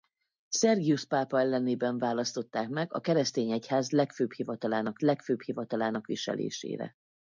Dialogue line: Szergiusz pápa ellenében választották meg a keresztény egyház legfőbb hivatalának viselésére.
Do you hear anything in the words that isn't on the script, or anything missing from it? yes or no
yes